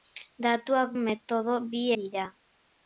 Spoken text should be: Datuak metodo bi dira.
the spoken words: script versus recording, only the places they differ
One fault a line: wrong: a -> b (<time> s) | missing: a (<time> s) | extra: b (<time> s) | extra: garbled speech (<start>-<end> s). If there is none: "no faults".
no faults